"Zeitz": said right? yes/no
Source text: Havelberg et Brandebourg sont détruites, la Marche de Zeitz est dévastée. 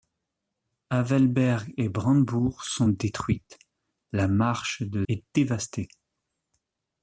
no